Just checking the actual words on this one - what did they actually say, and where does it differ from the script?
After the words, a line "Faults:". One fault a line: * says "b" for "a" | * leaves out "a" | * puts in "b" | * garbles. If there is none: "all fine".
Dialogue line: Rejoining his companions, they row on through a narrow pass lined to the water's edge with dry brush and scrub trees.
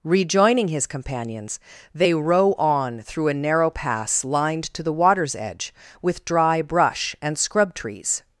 Rejoining his companions, they row on through a narrow pass lined to the water's edge with dry brush and scrub trees.
Faults:
all fine